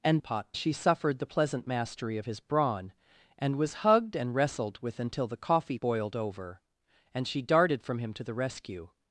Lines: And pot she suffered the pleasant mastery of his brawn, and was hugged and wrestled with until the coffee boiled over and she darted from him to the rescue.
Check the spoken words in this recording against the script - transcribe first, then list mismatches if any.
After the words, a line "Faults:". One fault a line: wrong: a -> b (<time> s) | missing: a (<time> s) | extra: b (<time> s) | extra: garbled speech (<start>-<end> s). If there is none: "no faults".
And pot she suffered the pleasant mastery of his brawn, and was hugged and wrestled with until the coffee boiled over and she darted from him to the rescue.
Faults:
no faults